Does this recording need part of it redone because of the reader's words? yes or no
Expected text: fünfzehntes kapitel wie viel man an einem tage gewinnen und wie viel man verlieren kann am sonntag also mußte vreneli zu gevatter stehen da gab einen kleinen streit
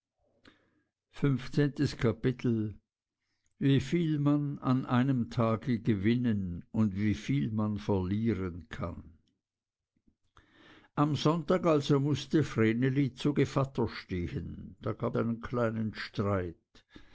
no